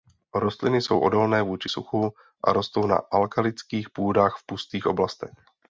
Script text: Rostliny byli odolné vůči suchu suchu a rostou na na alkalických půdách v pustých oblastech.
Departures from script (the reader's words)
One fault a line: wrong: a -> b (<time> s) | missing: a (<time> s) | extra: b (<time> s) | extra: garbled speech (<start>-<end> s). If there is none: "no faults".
wrong: byli -> jsou (0.8 s)
missing: suchu (2.1 s)
missing: na (3.0 s)